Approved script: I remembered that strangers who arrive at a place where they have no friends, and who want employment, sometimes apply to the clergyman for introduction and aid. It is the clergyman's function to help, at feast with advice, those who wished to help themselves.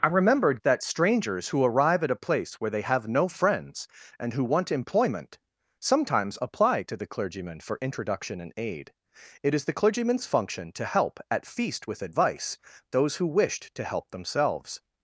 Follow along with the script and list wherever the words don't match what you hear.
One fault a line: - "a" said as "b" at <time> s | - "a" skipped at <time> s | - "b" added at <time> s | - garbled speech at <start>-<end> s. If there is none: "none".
none